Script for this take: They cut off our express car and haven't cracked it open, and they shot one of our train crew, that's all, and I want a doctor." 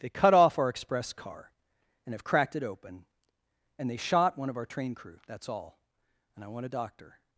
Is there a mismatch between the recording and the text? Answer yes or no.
yes